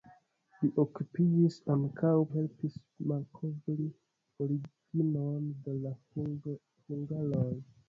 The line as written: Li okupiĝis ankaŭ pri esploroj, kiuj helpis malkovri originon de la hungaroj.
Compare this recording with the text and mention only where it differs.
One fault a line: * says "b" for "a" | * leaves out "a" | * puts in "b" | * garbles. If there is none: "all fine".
* leaves out "pri esploroj kiuj"